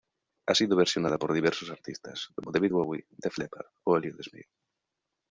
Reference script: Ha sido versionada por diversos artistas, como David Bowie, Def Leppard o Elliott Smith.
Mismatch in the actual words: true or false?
false